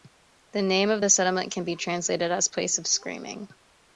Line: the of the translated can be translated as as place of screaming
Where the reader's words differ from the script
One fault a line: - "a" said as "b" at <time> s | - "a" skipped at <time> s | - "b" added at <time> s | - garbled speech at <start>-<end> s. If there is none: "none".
- "name" added at 0.6 s
- "translated" said as "settlement" at 1.1 s
- "as" skipped at 2.5 s